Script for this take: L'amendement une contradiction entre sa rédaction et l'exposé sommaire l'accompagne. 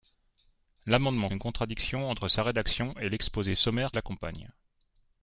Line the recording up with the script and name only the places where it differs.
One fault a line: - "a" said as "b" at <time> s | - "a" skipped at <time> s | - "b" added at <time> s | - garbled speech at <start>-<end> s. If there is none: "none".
none